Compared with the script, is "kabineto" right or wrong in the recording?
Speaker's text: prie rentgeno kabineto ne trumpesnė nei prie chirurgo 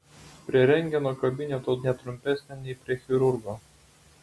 right